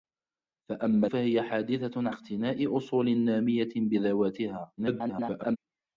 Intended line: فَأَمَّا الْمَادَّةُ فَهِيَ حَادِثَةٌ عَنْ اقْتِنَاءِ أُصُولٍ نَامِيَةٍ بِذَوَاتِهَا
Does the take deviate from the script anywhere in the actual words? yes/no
yes